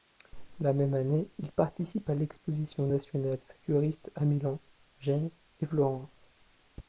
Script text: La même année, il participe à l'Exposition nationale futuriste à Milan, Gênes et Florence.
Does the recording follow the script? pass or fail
pass